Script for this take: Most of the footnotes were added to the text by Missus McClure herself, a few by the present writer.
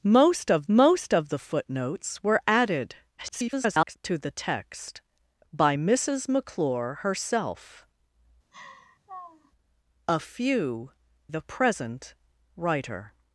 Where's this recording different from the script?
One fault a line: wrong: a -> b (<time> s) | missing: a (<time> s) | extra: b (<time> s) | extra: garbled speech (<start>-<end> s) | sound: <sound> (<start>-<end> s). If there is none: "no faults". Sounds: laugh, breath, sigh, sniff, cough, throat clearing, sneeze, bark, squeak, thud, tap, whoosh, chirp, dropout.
extra: most of (0.7 s)
extra: garbled speech (3.2-4.0 s)
sound: laugh (8.5-9.5 s)
missing: by (10.9 s)